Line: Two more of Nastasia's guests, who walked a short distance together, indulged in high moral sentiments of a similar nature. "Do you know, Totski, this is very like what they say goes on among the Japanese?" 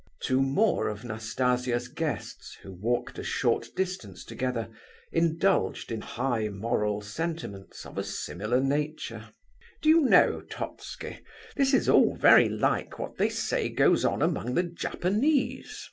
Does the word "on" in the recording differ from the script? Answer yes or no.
no